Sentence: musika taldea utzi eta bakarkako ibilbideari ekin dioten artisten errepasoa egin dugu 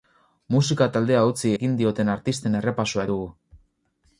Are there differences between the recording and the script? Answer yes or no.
yes